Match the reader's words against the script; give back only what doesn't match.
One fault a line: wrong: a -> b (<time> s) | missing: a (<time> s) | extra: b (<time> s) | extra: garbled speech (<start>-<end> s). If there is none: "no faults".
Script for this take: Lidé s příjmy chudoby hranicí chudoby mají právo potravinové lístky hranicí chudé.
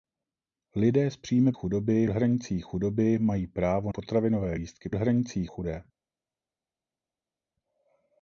no faults